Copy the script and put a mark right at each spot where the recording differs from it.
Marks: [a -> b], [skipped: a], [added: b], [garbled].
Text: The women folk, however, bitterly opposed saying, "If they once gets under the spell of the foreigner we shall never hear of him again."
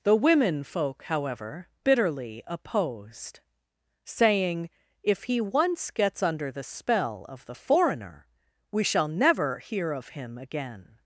The women folk, however, bitterly opposed saying, "If [they -> he] once gets under the spell of the foreigner we shall never hear of him again."